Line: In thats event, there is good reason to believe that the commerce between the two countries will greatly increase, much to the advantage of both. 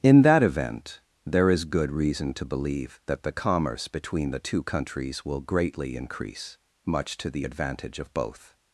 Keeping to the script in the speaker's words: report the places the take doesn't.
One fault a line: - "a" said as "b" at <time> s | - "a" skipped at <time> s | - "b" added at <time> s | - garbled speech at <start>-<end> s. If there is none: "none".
- "thats" said as "that" at 0.2 s